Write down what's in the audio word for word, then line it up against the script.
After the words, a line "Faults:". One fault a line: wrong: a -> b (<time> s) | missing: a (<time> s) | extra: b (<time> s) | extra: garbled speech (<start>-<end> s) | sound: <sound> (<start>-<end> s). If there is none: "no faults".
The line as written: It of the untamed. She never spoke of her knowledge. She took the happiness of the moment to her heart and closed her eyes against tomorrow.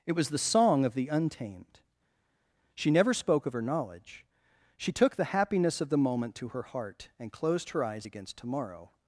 It was the song of the untamed. She never spoke of her knowledge. She took the happiness of the moment to her heart and closed her eyes against tomorrow.
Faults:
extra: was the song (0.1 s)